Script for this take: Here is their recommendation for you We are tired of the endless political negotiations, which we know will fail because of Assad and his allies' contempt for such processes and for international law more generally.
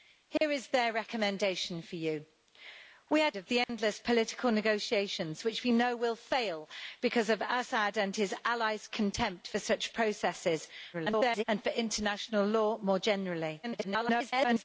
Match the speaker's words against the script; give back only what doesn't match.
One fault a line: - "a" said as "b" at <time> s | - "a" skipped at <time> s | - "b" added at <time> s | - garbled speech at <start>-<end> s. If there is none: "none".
- "tired" skipped at 3.3 s
- garbled speech at 10.9-11.4 s
- garbled speech at 13.6-14.6 s